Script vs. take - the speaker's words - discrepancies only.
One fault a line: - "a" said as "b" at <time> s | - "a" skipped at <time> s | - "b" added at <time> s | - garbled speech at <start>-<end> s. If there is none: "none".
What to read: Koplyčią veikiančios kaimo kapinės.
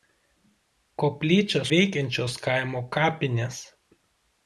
none